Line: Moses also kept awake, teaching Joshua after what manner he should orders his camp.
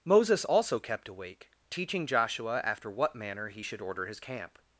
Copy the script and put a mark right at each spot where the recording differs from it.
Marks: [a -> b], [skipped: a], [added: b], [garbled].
Moses also kept awake, teaching Joshua after what manner he should [orders -> order] his camp.